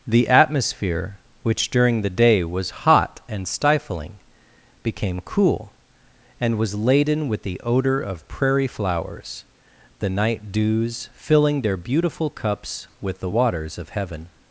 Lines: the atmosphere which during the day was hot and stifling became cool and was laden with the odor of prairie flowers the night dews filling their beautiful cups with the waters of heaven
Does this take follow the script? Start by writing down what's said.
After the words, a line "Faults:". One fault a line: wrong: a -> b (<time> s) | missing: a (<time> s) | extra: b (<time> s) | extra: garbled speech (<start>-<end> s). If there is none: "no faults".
the atmosphere which during the day was hot and stifling became cool and was laden with the odor of prairie flowers the night dews filling their beautiful cups with the waters of heaven
Faults:
no faults